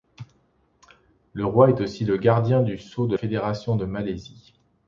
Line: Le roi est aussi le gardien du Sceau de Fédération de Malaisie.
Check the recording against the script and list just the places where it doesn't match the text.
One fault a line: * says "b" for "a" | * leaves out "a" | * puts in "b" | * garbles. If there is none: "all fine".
all fine